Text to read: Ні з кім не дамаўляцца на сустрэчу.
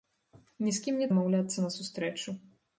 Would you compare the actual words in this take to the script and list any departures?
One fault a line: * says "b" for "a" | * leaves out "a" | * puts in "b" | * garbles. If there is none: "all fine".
all fine